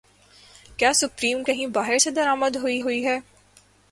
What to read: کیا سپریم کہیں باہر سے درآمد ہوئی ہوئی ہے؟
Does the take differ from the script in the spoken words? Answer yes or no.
no